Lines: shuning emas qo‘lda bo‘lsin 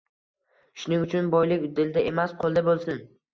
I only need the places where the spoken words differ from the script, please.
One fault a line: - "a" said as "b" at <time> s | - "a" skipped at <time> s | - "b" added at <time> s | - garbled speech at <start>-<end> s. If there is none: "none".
- "uchun boylik dilda" added at 1.1 s